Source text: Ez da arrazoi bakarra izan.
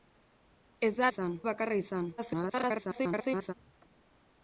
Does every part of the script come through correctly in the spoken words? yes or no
no